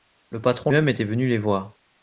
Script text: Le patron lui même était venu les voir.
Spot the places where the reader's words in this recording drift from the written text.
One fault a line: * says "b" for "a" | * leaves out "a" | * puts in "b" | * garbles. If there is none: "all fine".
* leaves out "lui"